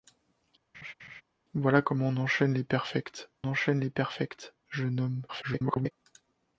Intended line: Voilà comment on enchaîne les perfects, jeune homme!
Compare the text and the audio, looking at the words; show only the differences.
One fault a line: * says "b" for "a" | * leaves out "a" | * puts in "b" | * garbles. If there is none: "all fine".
* puts in "enchaîne les perfects"
* garbles